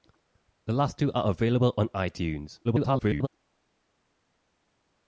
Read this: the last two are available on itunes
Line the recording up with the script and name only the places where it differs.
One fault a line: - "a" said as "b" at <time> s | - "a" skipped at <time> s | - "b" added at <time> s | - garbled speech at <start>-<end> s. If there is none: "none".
- garbled speech at 2.6-3.3 s